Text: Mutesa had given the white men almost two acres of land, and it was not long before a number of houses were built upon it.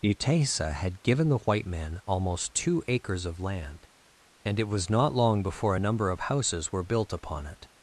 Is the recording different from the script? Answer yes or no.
no